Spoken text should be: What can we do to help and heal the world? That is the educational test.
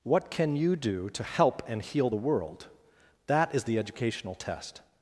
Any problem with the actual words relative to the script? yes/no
yes